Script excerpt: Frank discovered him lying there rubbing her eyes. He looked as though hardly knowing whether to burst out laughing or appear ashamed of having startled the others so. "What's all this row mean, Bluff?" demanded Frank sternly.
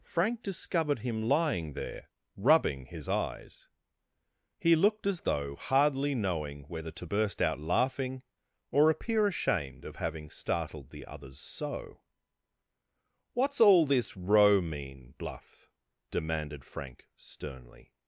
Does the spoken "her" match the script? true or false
false